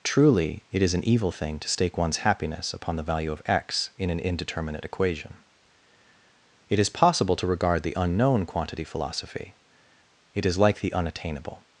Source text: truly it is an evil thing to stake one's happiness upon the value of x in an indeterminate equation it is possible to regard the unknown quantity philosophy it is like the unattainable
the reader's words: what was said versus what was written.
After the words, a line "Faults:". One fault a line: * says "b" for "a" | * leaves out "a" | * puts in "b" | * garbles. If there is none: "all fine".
truly it is an evil thing to stake one's happiness upon the value of x in an indeterminate equation it is possible to regard the unknown quantity philosophy it is like the unattainable
Faults:
all fine